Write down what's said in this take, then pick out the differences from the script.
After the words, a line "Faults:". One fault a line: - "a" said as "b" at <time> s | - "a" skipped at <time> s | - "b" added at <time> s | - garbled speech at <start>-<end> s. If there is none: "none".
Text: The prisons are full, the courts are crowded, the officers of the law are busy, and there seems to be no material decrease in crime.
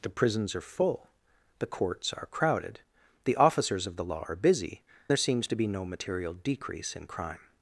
The prisons are full, the courts are crowded, the officers of the law are busy, there seems to be no material decrease in crime.
Faults:
- "and" skipped at 4.8 s